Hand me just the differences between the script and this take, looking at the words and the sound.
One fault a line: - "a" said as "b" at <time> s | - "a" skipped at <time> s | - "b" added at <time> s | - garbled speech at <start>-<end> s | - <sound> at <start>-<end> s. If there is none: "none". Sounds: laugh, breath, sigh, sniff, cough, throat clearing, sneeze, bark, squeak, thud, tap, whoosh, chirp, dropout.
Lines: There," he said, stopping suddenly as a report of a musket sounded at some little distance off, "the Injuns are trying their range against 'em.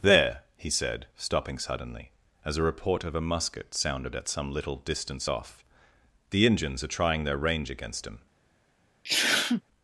- "em" said as "him" at 8.1 s
- sneeze at 9.0-9.6 s